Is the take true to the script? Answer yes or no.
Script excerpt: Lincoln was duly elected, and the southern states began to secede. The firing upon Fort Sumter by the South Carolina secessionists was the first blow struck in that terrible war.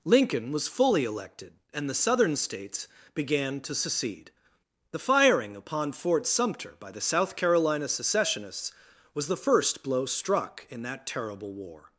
no